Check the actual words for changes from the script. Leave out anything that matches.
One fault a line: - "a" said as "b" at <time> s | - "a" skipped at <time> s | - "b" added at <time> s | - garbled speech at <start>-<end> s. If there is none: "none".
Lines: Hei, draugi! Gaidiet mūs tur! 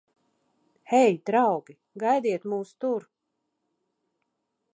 none